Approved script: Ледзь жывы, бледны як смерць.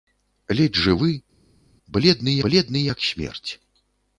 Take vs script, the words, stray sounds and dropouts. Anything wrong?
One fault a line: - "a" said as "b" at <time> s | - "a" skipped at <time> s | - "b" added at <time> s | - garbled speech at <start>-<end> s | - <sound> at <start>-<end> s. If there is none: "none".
- "бледны" added at 2.5 s